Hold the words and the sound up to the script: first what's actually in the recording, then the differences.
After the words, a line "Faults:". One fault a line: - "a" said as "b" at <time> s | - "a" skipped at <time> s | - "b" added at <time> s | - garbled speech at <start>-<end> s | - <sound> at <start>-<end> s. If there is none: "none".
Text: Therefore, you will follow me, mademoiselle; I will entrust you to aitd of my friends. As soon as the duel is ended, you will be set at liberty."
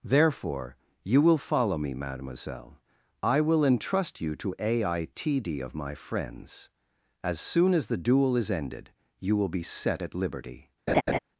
Therefore, you will follow me, mademoiselle; I will entrust you to aitd of my friends. As soon as the duel is ended, you will be set at liberty."
Faults:
- laugh at 10.9-11.2 s